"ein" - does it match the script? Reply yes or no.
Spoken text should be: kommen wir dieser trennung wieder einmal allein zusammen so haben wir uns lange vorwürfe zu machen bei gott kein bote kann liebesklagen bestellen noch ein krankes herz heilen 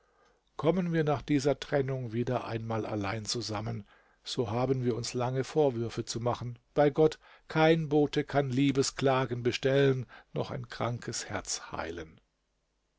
yes